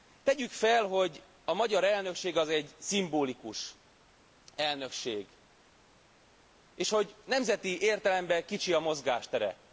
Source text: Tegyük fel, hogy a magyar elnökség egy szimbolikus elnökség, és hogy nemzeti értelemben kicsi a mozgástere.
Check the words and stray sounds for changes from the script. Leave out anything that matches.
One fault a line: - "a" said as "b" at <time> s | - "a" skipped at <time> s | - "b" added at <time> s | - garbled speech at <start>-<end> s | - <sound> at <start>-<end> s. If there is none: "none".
- "az" added at 2.4 s